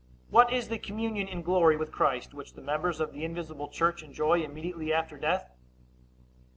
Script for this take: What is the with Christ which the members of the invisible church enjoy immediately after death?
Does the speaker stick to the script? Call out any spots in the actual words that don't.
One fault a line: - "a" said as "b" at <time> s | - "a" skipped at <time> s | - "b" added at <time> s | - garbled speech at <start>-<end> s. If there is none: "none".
- "communion in glory" added at 0.8 s